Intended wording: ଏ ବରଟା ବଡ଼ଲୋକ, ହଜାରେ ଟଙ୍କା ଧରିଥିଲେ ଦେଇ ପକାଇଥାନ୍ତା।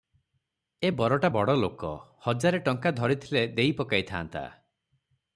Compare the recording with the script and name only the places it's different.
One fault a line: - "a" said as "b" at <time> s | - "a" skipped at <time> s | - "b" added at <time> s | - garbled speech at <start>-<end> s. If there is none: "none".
none